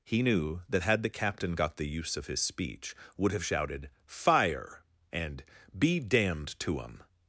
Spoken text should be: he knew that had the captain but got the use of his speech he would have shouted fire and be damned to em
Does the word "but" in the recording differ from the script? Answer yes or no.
yes